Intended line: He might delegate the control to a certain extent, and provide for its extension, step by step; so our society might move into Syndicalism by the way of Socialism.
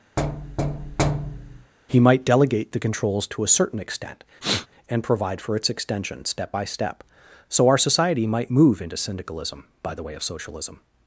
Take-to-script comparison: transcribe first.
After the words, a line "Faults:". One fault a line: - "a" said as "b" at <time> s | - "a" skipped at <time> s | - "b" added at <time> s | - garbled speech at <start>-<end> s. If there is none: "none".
He might delegate the controls to a certain extent, and provide for its extension, step by step; so our society might move into Syndicalism by the way of Socialism.
Faults:
- "control" said as "controls" at 2.8 s